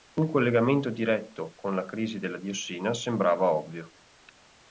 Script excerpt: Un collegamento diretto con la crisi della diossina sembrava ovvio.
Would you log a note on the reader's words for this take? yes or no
no